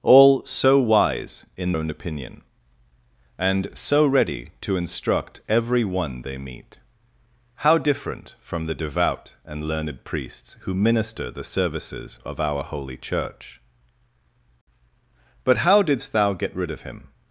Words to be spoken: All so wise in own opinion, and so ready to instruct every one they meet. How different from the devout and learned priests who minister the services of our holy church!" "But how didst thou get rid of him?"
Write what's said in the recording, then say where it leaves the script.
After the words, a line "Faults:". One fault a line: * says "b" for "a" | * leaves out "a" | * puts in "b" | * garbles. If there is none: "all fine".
All so wise in own opinion, and so ready to instruct every one they meet. How different from the devout and learned priests who minister the services of our holy church!" "But how didst thou get rid of him?"
Faults:
all fine